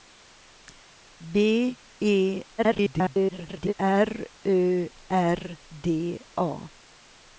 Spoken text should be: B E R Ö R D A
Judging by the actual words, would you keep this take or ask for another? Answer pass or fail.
fail